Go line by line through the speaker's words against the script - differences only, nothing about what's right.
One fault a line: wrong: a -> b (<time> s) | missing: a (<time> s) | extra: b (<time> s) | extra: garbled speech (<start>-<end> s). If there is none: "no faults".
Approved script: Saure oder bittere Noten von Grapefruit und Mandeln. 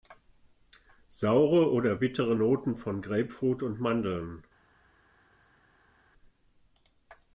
no faults